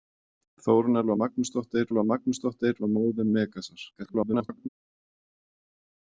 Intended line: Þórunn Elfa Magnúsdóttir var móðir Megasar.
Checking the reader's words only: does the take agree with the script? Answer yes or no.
no